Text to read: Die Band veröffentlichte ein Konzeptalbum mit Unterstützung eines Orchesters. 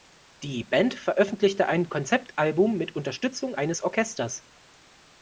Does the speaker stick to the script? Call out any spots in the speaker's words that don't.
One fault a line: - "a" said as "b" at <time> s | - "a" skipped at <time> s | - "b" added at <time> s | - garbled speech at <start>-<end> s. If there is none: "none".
none